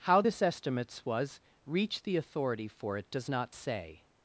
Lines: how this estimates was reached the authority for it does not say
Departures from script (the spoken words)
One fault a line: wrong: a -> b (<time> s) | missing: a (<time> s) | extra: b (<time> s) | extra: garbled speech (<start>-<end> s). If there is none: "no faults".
no faults